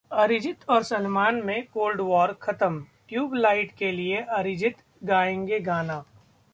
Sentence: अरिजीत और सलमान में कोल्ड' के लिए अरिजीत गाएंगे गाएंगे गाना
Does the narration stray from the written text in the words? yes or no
yes